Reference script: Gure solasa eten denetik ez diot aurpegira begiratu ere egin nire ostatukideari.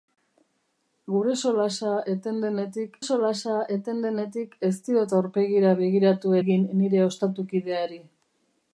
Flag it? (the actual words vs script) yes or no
yes